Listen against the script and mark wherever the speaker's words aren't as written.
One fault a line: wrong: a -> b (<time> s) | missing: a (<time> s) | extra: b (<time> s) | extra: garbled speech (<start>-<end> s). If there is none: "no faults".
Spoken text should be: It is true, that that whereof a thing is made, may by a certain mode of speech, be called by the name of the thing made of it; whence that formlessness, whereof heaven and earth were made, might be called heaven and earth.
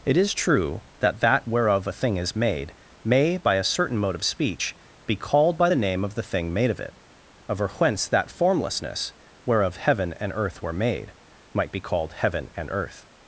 extra: over (7.5 s)